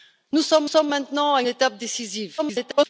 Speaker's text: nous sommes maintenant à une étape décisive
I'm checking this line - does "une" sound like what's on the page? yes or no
no